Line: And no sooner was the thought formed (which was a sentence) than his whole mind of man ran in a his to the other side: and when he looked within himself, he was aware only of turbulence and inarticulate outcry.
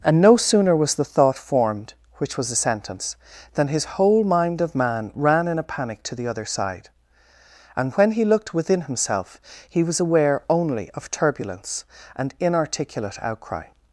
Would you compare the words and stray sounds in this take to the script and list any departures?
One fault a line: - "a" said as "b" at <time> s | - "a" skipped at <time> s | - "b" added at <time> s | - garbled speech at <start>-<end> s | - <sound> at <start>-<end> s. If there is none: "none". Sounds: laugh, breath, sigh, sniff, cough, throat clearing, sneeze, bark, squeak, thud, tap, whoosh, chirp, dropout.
- "his" said as "panic" at 5.6 s